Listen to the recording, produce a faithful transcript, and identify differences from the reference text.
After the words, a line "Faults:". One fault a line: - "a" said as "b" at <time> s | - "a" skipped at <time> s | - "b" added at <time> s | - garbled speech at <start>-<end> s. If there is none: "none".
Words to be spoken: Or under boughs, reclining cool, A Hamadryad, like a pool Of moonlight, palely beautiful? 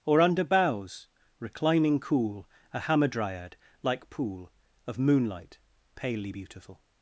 Or under boughs, reclining cool, A Hamadryad, like pool Of moonlight, palely beautiful?
Faults:
- "a" skipped at 4.1 s